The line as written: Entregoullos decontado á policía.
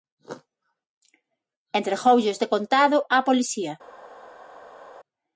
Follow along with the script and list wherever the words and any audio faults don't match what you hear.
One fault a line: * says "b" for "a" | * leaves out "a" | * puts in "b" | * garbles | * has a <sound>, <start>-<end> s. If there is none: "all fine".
all fine